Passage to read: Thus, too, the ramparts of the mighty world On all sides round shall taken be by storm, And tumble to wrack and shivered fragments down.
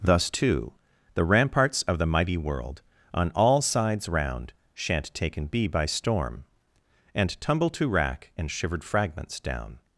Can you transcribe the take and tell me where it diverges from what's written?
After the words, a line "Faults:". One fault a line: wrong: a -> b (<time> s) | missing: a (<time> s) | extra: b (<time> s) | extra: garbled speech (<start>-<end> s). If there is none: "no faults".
Thus, too, the ramparts of the mighty world On all sides round shan't taken be by storm, And tumble to wrack and shivered fragments down.
Faults:
wrong: shall -> shan't (4.7 s)